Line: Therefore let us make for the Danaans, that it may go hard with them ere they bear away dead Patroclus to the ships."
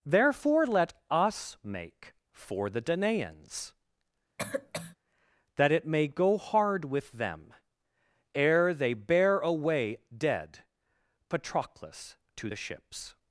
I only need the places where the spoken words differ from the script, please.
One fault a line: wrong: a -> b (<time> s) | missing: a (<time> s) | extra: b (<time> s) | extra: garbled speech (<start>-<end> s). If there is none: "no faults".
no faults